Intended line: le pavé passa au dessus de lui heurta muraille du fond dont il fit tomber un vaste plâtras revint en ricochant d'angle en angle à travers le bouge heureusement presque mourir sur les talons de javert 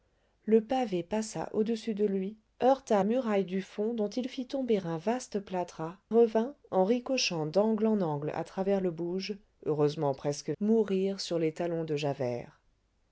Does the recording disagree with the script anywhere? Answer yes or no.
no